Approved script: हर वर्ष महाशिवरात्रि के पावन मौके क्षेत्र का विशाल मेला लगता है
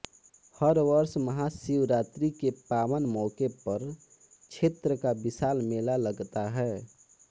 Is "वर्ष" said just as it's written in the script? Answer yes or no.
yes